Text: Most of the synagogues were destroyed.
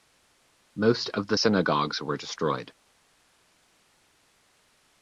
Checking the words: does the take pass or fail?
pass